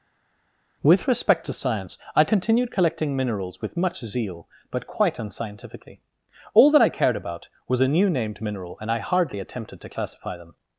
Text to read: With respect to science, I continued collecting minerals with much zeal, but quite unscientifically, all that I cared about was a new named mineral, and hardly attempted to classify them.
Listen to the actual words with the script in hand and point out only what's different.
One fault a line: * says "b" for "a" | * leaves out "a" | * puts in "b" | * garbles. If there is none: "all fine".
* puts in "I"